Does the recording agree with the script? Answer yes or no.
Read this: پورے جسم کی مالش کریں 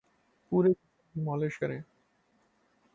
yes